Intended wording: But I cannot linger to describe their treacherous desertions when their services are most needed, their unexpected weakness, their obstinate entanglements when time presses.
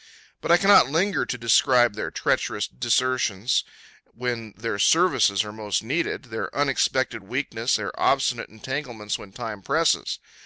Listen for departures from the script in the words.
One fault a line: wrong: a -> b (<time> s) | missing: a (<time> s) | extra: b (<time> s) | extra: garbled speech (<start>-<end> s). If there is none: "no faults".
no faults